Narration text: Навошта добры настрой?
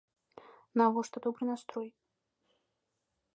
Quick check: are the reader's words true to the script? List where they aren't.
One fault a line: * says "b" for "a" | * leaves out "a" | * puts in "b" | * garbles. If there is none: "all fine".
all fine